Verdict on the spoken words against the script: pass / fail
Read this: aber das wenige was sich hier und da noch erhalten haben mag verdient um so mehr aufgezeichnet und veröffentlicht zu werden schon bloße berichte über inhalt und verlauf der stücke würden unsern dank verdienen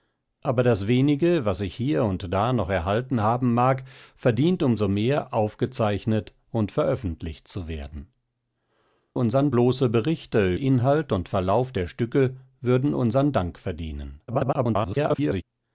fail